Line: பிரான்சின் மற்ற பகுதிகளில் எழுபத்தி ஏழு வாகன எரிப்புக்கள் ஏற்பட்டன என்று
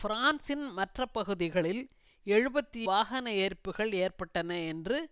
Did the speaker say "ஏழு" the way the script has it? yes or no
no